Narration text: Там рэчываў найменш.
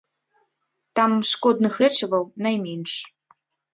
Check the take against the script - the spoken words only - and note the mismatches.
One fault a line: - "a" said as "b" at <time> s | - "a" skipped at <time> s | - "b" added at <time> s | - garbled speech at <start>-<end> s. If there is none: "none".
- "шкодных" added at 1.3 s